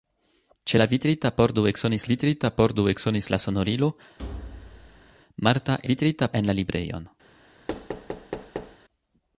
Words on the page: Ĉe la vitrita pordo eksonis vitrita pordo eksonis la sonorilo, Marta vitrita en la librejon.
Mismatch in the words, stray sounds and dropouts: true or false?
true